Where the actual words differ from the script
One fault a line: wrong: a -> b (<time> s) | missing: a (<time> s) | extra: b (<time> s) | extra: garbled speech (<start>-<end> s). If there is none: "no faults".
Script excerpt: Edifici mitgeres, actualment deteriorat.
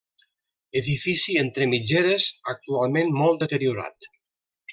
extra: entre (1.4 s)
extra: molt (3.2 s)